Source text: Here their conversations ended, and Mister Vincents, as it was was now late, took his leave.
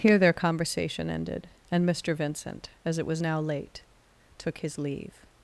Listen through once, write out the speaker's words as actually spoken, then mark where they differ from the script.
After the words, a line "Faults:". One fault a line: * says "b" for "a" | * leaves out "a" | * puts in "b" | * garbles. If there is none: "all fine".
Here their conversation ended, and Mister Vincent, as it was now late, took his leave.
Faults:
* says "conversation" for "conversations"
* says "Vincent" for "Vincents"
* leaves out "was"